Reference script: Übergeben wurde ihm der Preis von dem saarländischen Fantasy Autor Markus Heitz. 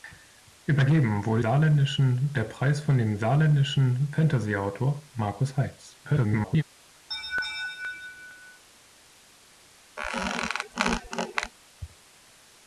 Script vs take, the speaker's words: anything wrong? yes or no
yes